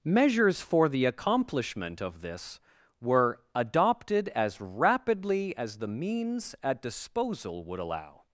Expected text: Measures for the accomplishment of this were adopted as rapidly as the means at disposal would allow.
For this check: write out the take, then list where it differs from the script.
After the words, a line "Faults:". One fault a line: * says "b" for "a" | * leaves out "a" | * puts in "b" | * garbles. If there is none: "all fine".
Measures for the accomplishment of this were adopted as rapidly as the means at disposal would allow.
Faults:
all fine